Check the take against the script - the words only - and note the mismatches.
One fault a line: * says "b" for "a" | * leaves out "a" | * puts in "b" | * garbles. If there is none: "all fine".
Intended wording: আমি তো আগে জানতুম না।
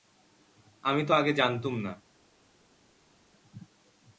all fine